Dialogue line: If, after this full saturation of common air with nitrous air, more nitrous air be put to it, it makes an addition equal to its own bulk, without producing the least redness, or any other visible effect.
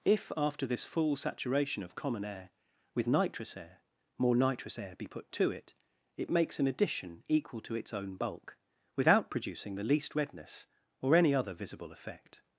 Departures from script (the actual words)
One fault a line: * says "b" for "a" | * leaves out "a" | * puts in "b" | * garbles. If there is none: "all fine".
all fine